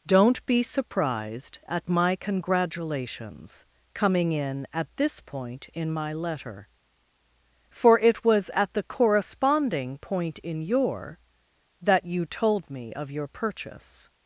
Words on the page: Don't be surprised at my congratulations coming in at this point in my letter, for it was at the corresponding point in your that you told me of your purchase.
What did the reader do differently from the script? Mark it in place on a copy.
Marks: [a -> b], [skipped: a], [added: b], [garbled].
Don't be surprised at my congratulations coming in at this point in my letter, for it was at the corresponding point in your that you told me of your purchase.